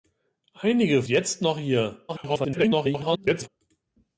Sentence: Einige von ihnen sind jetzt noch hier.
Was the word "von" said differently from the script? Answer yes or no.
yes